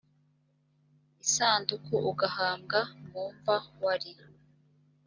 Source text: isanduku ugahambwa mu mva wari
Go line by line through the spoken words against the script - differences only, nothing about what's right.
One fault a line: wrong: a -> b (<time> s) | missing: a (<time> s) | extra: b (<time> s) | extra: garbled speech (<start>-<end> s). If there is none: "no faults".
no faults